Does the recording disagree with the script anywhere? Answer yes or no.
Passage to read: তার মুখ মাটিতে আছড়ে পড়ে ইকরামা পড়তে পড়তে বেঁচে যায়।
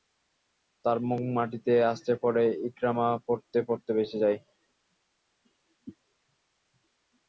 no